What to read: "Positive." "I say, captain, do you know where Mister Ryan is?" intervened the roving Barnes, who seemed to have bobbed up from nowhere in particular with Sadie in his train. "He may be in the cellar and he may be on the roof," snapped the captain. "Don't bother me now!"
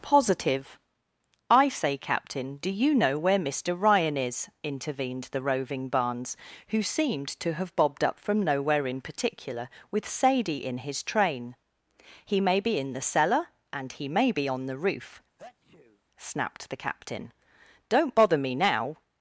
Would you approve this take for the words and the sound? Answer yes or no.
no